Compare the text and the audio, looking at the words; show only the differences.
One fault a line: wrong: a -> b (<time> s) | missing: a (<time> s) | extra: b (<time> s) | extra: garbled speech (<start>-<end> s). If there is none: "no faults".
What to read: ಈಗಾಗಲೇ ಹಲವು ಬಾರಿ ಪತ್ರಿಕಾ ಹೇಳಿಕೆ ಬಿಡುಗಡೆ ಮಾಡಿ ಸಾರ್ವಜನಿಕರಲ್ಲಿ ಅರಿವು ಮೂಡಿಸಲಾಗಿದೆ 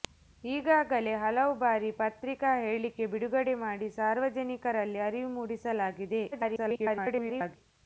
extra: garbled speech (6.3-7.6 s)